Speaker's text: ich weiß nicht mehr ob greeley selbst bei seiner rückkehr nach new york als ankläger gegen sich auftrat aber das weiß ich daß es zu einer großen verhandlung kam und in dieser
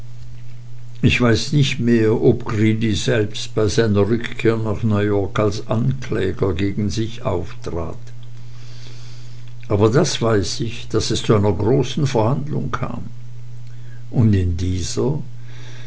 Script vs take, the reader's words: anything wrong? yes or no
no